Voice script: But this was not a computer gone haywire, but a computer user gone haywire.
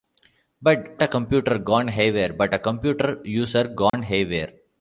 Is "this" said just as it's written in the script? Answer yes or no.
no